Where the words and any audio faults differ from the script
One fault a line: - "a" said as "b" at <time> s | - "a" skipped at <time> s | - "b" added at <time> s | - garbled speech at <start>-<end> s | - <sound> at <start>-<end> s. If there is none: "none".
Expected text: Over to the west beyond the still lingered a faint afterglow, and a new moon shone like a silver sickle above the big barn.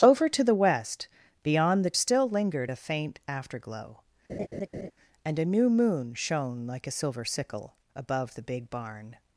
- laugh at 4.3-4.9 s